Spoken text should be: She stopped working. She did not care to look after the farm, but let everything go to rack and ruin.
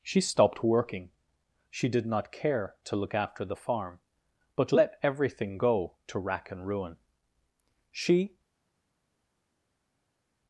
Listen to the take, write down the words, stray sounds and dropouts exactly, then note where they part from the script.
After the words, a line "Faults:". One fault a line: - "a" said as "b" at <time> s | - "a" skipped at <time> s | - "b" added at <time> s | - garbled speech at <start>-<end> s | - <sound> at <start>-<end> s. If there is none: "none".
She stopped working. She did not care to look after the farm, but let everything go to rack and ruin. She
Faults:
- "She" added at 7.9 s